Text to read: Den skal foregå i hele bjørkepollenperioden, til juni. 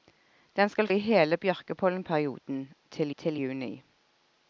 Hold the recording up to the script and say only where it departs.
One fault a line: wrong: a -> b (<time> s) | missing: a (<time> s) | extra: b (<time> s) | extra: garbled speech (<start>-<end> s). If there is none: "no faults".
missing: foregå (0.9 s)
extra: til (3.2 s)